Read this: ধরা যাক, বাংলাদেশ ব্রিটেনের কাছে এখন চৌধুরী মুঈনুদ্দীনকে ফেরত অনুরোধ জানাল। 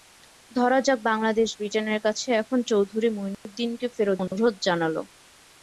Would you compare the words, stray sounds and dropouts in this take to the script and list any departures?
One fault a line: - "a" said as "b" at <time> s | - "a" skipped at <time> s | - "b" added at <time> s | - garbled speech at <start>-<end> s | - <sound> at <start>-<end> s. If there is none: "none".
- dropout at 3.3-3.5 s
- dropout at 4.3-4.3 s